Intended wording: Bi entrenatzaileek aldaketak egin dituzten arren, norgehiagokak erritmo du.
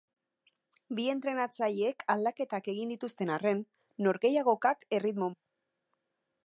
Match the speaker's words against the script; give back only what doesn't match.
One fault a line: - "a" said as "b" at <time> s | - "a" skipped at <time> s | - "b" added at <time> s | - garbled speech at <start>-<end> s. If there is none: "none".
none